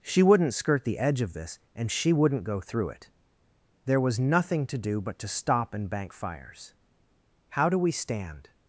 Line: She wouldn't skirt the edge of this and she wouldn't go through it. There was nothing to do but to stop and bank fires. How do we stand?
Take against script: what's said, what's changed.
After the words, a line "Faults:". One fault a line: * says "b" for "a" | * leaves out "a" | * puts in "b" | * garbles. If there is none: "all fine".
She wouldn't skirt the edge of this and she wouldn't go through it. There was nothing to do but to stop and bank fires. How do we stand?
Faults:
all fine